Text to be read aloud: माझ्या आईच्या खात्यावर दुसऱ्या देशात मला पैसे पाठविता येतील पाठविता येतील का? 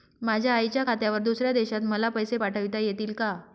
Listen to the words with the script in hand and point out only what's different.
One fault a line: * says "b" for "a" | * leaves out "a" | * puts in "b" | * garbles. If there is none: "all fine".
* leaves out "पाठविता येतील"